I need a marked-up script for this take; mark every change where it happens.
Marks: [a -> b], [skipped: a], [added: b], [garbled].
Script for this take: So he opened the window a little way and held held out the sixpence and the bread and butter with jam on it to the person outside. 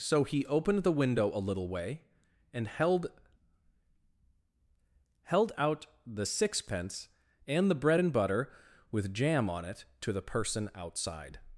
So he opened the window a little way and held held out the sixpence and the bread and butter with jam on it to the person outside.